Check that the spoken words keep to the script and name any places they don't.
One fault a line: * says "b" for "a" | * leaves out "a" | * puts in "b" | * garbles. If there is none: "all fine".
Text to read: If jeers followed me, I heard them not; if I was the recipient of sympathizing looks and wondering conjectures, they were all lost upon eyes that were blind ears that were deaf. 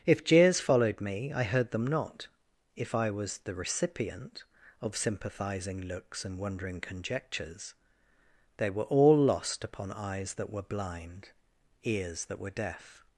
all fine